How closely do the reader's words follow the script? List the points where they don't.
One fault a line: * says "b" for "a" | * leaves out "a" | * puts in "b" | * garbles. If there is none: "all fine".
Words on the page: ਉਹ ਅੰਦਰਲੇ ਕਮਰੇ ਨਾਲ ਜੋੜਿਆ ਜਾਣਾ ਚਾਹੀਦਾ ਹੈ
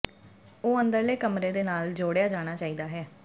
* puts in "ਦੇ"